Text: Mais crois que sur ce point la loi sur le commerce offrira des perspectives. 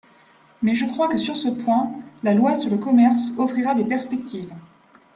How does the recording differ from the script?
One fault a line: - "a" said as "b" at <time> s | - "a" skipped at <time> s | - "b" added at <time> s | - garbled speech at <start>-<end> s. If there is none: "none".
- "je" added at 0.7 s